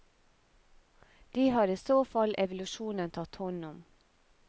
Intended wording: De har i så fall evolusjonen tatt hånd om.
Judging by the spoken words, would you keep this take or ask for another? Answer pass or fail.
pass